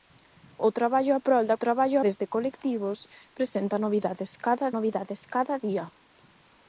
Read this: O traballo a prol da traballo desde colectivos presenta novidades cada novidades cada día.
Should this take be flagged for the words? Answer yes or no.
no